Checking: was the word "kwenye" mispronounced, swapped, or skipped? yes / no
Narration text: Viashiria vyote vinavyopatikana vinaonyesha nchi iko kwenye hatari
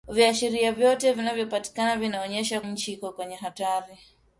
no